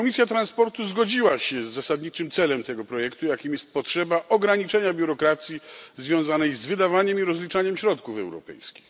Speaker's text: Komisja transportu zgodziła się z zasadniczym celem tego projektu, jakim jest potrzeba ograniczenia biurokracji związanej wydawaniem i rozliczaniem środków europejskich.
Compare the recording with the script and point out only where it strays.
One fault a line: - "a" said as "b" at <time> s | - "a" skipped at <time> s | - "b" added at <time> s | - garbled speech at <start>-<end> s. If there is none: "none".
- "z" added at 6.5 s